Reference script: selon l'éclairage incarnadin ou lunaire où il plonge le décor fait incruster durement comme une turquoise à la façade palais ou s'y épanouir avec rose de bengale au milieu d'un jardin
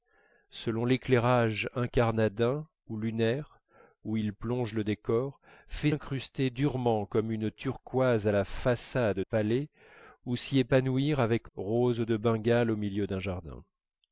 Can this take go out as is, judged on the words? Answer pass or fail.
pass